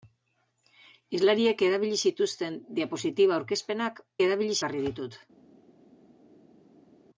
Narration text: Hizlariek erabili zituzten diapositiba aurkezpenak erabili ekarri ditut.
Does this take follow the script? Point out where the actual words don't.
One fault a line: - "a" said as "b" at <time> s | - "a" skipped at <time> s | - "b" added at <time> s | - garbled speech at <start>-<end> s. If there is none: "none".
none